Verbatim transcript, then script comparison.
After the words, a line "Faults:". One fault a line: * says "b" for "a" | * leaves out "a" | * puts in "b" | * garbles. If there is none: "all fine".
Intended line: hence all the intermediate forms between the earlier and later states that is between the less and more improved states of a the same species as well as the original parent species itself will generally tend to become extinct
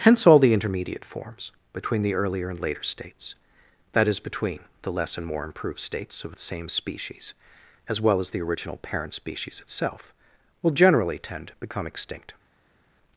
hence all the intermediate forms between the earlier and later states that is between the less and more improved states of the same species as well as the original parent species itself will generally tend to become extinct
Faults:
* leaves out "a"